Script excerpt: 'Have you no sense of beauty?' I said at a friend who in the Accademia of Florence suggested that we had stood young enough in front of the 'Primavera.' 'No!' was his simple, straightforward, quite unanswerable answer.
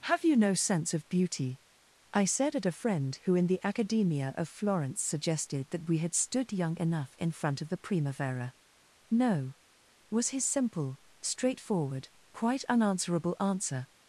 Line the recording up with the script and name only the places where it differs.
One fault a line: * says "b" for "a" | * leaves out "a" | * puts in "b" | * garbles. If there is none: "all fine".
all fine